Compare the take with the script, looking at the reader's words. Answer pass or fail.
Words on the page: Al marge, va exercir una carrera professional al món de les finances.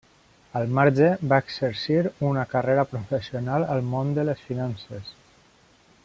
pass